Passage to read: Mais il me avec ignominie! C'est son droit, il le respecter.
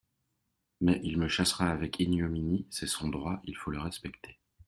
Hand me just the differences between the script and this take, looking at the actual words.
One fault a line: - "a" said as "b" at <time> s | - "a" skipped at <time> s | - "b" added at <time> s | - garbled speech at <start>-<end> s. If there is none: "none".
- "chassera" added at 1.3 s
- "faut" added at 3.5 s